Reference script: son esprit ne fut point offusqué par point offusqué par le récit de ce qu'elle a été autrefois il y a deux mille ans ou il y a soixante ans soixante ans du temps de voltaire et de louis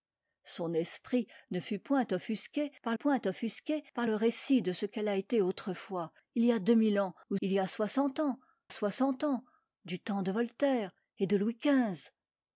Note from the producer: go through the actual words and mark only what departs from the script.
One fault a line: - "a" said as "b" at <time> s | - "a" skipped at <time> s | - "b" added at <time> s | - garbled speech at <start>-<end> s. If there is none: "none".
none